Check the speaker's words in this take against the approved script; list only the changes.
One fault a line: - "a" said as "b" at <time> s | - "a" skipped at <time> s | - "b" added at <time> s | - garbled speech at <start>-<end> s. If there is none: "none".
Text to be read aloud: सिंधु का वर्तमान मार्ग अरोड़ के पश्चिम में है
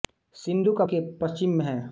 - "वर्तमान मार्ग अरोड़" skipped at 0.8 s